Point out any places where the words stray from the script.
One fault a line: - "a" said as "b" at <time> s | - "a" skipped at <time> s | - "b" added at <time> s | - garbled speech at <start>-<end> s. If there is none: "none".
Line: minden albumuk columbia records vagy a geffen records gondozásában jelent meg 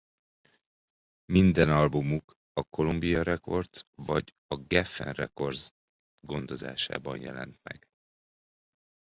- "a" added at 2.5 s